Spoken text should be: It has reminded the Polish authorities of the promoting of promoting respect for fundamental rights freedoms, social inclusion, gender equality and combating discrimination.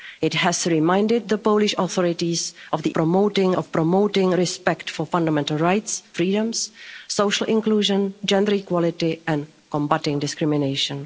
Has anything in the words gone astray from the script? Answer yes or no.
no